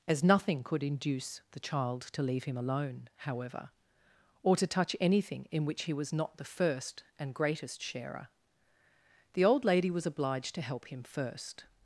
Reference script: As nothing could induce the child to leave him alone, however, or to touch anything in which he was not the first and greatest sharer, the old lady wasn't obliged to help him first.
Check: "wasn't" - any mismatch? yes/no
yes